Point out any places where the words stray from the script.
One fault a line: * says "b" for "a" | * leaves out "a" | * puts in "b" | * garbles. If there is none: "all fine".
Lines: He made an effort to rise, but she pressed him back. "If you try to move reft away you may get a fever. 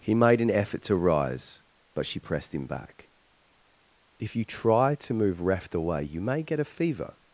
all fine